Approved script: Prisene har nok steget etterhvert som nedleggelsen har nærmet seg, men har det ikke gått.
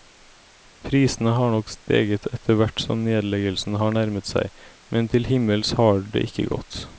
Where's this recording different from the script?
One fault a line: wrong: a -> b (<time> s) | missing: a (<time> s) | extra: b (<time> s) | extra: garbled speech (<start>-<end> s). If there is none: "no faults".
extra: til himmels (5.1 s)